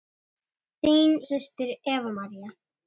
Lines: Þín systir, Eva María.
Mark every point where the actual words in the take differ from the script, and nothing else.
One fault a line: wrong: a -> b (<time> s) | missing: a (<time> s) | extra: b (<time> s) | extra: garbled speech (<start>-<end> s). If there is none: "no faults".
no faults